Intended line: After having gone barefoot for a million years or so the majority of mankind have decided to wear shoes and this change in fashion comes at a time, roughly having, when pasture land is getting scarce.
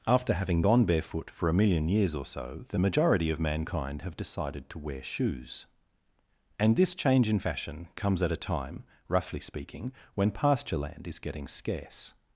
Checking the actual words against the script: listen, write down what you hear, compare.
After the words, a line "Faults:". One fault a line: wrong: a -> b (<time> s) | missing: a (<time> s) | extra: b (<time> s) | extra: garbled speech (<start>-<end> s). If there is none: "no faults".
After having gone barefoot for a million years or so the majority of mankind have decided to wear shoes and this change in fashion comes at a time, roughly speaking, when pasture land is getting scarce.
Faults:
wrong: having -> speaking (9.4 s)